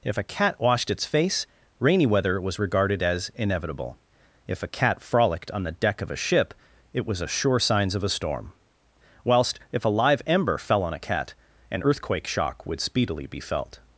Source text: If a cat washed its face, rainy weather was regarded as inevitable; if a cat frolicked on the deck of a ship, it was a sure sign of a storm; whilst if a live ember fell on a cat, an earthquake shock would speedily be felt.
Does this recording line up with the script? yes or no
no